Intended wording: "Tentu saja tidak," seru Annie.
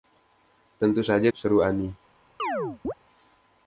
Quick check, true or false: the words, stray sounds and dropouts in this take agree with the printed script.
false